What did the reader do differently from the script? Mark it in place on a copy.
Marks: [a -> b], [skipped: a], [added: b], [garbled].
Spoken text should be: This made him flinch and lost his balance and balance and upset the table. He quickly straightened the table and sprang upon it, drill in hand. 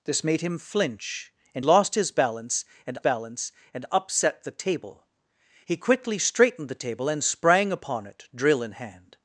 This made him flinch and lost his balance and balance and upset the table. He quickly straightened the table and sprang upon it, drill in hand.